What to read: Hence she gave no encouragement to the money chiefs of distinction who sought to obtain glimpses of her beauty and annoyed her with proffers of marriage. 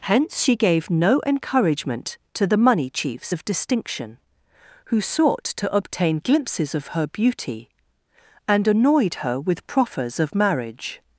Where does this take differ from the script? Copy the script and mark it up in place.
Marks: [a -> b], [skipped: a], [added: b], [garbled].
Hence she gave no encouragement to the money chiefs of distinction who sought to obtain glimpses of her beauty and annoyed her with proffers of marriage.